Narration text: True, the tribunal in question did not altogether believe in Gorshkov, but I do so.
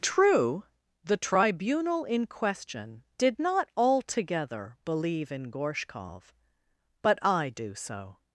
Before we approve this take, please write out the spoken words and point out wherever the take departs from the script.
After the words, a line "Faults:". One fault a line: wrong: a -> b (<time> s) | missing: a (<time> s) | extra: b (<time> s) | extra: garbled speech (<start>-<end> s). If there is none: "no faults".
True, the tribunal in question did not altogether believe in Gorshkov, but I do so.
Faults:
no faults